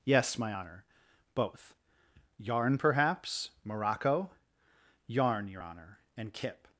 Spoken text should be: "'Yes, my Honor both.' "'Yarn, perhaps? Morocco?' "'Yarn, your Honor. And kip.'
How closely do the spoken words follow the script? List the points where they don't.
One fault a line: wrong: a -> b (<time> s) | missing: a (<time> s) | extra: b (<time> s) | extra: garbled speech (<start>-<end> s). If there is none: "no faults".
no faults